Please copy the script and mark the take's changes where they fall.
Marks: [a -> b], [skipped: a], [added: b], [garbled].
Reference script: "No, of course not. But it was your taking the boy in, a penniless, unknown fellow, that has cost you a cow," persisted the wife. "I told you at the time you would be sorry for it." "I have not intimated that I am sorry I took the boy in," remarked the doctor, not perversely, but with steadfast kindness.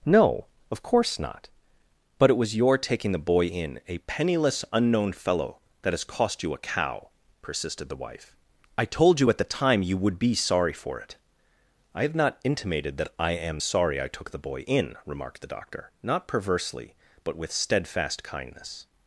"No, of course not. But it was your taking the boy in, a penniless, unknown fellow, that has cost you a cow," persisted the wife. "I told you at the time you would be sorry for it." "I have not intimated that I am sorry I took the boy in," remarked the doctor, not perversely, but with steadfast kindness.